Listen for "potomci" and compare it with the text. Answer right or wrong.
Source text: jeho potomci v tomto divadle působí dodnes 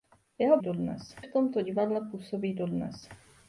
wrong